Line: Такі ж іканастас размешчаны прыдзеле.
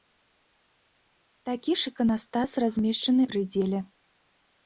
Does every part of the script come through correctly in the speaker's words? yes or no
yes